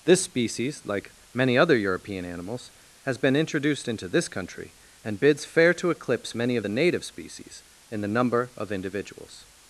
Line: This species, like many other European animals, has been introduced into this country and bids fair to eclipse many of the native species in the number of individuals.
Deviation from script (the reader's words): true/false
false